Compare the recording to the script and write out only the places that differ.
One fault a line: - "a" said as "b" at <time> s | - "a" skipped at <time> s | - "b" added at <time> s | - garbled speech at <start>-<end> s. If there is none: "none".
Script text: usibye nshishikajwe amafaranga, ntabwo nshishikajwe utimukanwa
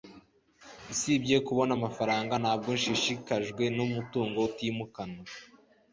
- "nshishikajwe" said as "kubona" at 1.5 s
- "numutungo" added at 3.8 s